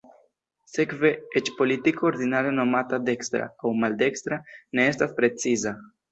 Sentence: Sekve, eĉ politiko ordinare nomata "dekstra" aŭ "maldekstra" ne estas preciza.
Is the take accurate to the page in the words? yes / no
yes